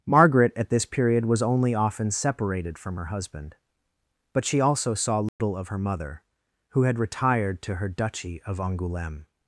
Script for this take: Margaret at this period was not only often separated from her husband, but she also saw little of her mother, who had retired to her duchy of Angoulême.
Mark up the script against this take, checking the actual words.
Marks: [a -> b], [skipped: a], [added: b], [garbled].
Margaret at this period was [skipped: not] only often separated from her husband, but she also saw little of her mother, who had retired to her duchy of Angoulême.